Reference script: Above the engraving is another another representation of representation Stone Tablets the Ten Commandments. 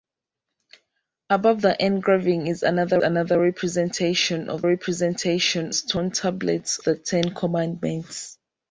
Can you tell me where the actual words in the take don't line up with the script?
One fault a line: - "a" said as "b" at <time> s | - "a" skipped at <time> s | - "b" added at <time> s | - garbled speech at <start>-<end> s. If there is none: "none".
none